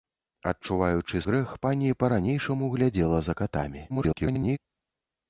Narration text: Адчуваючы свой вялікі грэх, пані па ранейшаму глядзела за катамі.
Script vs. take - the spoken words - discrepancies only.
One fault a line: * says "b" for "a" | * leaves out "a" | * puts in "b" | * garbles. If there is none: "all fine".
* leaves out "свой вялікі"
* garbles